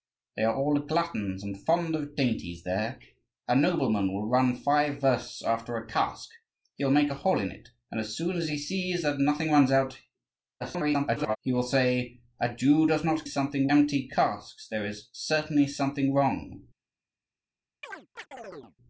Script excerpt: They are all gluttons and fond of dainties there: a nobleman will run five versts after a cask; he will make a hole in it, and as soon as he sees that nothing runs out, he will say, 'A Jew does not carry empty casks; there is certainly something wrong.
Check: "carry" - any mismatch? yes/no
yes